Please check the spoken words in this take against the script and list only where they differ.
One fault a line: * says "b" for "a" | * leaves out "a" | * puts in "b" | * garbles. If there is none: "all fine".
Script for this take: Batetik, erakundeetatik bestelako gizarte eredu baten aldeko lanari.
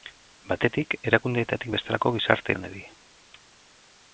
* leaves out "eredu baten aldeko"